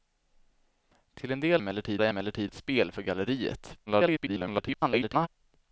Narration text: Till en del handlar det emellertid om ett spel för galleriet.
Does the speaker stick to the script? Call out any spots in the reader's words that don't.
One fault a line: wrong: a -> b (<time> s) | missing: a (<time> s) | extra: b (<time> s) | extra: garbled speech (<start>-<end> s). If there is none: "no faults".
wrong: handlar -> emellertid (1.6 s)
missing: om (2.5 s)
extra: garbled speech (3.9-5.3 s)